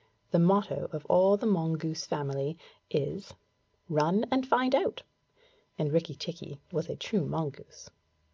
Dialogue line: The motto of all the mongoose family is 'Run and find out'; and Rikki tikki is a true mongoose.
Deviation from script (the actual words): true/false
true